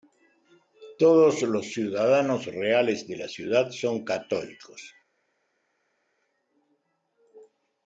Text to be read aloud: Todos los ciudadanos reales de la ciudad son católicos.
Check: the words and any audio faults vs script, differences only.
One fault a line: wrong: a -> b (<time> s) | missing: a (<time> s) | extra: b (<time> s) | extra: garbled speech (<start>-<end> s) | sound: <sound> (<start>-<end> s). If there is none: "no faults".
no faults